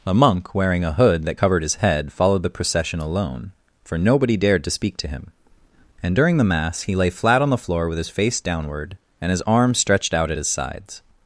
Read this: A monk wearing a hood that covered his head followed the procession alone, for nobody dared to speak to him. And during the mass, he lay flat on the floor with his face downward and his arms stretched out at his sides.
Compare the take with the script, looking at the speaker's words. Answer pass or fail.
pass